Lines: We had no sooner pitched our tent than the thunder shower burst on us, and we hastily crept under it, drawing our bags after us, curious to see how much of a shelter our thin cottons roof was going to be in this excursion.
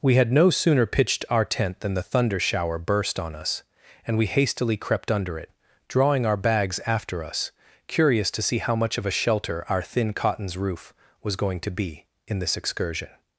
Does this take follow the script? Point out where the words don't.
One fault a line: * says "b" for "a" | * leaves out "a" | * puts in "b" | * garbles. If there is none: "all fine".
all fine